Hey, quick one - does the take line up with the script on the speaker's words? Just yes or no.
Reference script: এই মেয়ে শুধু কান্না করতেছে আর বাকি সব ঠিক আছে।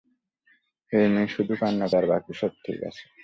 no